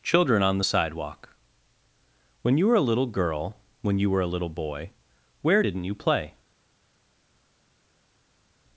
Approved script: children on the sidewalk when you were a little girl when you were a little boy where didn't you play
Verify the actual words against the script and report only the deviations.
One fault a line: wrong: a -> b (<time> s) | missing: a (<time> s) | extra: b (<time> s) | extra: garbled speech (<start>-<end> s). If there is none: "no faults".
no faults